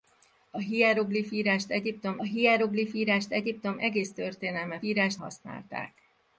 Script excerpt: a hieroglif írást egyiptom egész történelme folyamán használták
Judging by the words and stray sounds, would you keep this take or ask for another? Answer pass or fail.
fail